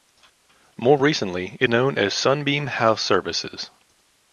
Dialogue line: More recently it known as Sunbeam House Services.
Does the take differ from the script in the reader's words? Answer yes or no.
no